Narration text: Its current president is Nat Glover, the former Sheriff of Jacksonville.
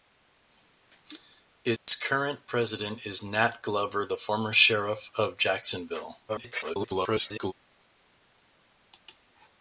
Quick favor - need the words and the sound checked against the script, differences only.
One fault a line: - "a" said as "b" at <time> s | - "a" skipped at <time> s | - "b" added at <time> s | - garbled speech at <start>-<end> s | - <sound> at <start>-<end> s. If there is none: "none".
- dropout at 1.8-1.9 s
- garbled speech at 6.3-7.5 s